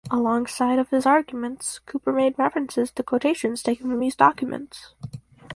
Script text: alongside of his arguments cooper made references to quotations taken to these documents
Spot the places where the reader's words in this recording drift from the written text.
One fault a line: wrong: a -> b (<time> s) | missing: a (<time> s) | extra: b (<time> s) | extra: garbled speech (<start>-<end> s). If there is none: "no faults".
wrong: to -> from (3.9 s)